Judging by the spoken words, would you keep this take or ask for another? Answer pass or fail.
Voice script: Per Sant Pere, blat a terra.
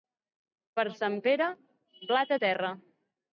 pass